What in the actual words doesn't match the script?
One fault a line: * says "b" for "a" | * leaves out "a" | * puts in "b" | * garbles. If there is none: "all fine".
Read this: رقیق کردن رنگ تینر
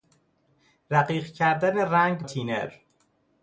all fine